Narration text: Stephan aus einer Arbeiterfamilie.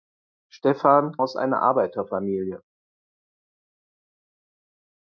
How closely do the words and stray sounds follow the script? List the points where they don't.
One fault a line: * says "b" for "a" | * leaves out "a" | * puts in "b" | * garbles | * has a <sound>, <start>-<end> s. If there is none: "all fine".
all fine